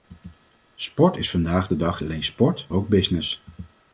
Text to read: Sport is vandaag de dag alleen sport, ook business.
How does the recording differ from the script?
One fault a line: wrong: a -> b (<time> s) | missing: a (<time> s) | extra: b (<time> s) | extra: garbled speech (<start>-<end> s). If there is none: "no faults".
no faults